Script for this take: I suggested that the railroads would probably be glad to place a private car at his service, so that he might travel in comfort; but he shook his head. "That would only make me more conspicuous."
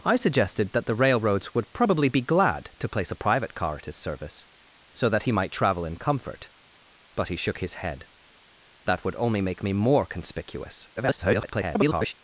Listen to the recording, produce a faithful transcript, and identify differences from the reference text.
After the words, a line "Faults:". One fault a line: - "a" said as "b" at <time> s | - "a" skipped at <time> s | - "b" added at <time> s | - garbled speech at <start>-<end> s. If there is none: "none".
I suggested that the railroads would probably be glad to place a private car at his service, so that he might travel in comfort; but he shook his head. "That would only make me more conspicuous." [garbled]
Faults:
- garbled speech at 11.0-12.1 s